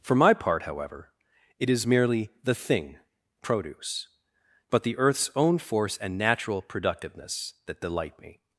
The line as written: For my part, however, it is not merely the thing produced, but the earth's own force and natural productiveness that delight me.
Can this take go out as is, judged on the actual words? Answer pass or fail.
fail